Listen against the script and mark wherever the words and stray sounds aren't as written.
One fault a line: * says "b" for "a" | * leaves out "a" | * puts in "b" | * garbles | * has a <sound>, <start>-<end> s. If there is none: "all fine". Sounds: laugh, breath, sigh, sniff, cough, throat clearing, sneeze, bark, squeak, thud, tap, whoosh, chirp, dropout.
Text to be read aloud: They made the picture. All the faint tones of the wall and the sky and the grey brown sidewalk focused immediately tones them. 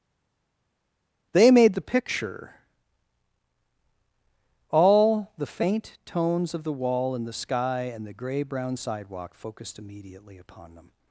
* says "upon" for "tones"